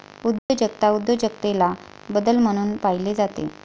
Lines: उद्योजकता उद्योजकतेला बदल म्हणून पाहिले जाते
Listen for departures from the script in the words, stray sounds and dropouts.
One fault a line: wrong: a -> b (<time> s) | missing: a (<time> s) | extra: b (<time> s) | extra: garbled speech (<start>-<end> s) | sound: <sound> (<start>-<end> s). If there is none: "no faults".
sound: dropout (0.4-0.5 s)